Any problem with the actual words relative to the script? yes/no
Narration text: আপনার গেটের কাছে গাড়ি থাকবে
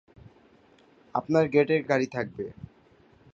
yes